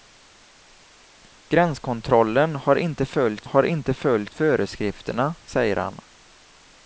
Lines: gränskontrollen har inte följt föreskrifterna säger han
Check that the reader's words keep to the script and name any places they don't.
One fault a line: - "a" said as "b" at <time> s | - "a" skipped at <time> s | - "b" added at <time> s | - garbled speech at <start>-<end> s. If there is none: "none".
- "har inte följt" added at 3.4 s